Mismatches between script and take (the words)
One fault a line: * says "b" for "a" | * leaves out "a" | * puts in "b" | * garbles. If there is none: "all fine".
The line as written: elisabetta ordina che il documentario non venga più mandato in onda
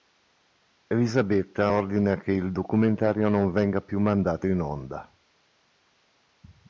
all fine